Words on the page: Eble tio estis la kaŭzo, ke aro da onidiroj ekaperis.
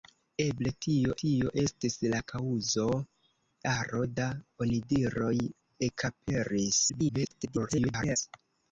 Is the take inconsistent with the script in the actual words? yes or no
yes